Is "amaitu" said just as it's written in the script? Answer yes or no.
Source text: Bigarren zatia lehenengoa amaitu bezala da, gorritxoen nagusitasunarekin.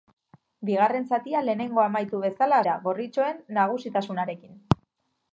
yes